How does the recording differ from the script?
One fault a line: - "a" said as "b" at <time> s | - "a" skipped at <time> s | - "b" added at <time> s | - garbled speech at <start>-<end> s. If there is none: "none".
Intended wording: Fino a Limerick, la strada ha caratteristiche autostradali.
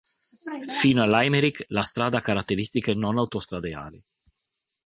- "non" added at 3.0 s